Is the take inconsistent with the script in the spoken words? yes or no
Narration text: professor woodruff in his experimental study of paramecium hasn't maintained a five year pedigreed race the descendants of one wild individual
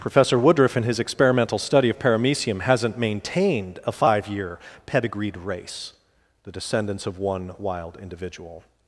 no